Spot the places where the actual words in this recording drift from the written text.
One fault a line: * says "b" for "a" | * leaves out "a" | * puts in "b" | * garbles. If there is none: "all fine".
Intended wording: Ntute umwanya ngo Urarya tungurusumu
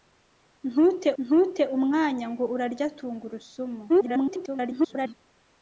* puts in "ntute"
* garbles